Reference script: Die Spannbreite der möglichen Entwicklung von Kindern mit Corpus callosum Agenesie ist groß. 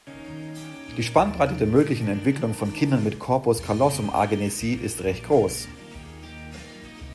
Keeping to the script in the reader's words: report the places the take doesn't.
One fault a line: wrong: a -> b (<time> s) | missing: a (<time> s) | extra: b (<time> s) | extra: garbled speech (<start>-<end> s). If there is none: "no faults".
extra: recht (5.0 s)